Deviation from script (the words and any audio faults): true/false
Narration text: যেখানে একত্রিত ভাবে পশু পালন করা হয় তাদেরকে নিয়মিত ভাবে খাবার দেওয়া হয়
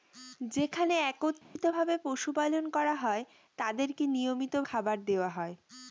true